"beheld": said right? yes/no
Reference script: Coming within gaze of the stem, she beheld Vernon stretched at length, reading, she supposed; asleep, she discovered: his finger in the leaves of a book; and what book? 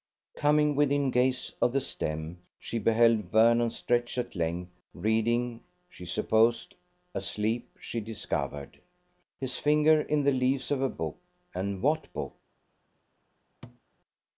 yes